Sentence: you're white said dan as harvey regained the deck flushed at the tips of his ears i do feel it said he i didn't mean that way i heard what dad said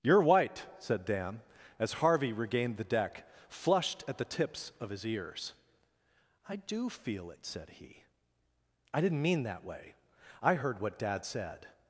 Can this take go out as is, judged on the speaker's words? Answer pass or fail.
pass